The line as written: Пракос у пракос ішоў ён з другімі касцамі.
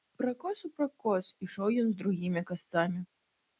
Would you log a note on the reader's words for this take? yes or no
no